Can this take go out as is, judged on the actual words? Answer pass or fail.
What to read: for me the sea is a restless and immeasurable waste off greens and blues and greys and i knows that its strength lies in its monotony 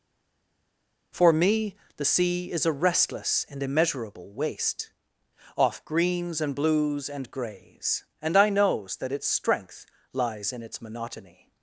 pass